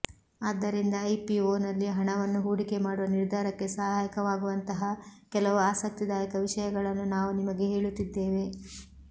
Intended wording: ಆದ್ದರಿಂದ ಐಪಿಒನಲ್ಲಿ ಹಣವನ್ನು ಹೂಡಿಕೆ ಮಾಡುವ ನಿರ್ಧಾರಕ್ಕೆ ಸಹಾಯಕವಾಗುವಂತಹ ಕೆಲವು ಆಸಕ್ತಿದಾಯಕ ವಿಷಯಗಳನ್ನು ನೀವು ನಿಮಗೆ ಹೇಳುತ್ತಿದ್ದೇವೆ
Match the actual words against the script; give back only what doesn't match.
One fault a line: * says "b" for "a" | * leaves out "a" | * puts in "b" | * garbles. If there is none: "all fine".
* says "ನಾವು" for "ನೀವು"